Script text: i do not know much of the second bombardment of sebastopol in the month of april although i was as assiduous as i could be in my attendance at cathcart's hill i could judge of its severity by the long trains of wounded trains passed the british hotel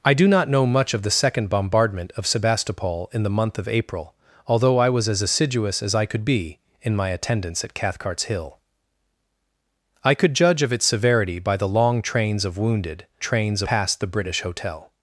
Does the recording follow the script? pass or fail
pass